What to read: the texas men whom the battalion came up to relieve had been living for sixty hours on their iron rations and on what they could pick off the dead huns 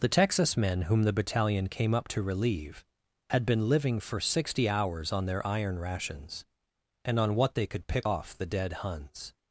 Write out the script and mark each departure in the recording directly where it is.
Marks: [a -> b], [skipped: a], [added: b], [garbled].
the texas men whom the battalion came up to relieve had been living for sixty hours on their iron rations and on what they could pick off the dead huns